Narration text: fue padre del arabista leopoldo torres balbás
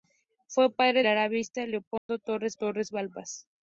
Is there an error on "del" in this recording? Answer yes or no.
yes